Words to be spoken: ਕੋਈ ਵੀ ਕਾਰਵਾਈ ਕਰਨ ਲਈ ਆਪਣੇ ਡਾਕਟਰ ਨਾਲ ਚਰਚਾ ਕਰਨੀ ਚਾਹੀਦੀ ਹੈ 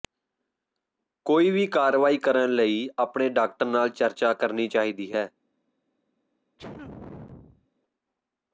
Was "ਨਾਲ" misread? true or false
false